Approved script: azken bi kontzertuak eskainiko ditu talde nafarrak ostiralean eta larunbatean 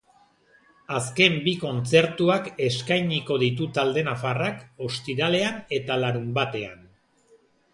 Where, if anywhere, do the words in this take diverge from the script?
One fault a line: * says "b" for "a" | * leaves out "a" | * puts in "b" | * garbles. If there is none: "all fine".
all fine